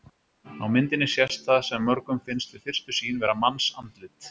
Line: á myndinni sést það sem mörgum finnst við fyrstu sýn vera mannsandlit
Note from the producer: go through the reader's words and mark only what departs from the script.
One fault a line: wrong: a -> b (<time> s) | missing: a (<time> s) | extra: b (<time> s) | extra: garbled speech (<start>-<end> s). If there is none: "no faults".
no faults